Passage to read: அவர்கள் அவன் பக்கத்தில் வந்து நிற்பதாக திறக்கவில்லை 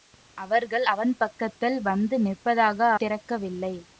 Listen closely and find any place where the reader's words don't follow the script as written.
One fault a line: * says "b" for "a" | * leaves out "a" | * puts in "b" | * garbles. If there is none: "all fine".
all fine